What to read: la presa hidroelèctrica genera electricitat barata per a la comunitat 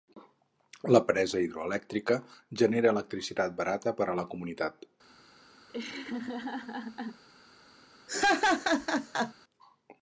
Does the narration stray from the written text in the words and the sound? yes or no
yes